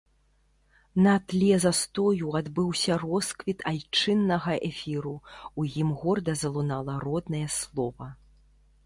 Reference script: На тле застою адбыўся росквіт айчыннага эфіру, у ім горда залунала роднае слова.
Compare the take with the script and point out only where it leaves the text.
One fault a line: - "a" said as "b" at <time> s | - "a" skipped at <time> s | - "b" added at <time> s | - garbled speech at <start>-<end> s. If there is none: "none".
none